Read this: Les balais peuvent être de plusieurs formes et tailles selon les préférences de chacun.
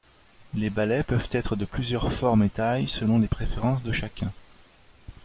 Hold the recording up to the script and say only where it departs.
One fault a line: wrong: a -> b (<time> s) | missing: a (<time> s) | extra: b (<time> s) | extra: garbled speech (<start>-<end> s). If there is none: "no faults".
no faults